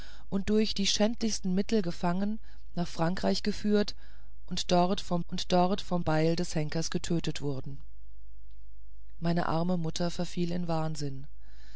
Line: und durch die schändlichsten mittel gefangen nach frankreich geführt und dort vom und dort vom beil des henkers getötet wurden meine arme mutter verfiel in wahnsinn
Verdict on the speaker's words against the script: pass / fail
pass